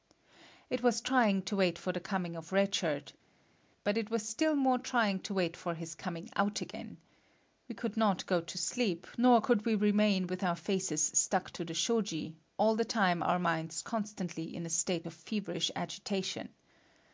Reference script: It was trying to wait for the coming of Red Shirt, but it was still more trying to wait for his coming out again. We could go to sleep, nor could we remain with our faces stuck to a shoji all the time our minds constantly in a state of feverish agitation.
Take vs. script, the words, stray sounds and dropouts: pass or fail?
fail